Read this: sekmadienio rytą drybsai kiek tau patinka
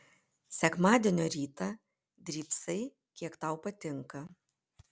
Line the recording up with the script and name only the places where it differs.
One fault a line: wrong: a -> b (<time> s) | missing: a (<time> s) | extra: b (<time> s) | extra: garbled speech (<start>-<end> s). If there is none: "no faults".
no faults